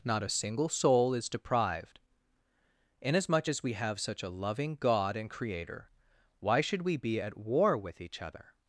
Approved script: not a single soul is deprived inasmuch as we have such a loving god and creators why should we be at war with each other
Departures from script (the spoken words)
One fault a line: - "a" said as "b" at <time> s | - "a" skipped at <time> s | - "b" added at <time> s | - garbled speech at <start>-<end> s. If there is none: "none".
- "creators" said as "creator" at 5.3 s